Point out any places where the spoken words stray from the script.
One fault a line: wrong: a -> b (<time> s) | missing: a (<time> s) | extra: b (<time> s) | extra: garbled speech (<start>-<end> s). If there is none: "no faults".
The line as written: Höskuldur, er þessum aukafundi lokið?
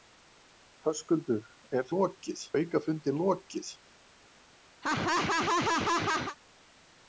wrong: þessum -> lokið (1.9 s)